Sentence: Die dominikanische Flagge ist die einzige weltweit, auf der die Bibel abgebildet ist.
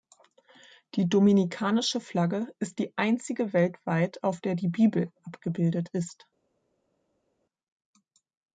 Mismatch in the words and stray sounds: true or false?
false